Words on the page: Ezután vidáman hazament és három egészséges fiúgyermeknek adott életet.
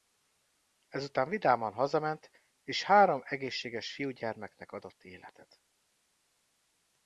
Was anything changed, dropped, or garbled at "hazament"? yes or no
no